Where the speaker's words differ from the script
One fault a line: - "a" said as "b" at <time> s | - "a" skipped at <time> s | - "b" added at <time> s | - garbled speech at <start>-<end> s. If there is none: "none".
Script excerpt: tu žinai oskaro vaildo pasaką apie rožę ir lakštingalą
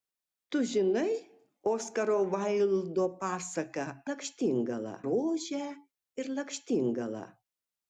- "apie" said as "lakštingalą" at 4.1 s